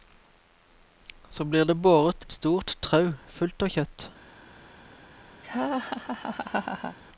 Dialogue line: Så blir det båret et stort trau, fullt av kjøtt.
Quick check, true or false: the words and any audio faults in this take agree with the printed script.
false